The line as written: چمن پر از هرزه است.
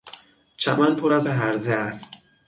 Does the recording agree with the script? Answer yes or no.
yes